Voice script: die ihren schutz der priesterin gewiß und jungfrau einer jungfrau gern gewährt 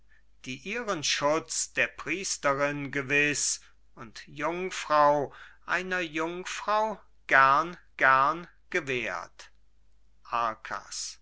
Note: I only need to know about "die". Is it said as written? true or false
true